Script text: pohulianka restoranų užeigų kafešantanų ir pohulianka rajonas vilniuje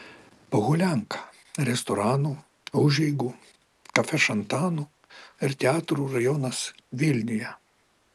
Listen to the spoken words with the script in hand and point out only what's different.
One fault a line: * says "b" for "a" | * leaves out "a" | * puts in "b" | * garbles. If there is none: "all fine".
* says "teatrų" for "pohulianka"